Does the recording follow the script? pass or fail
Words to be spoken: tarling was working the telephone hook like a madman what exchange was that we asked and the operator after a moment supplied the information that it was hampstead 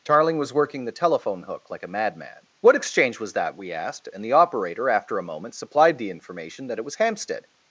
pass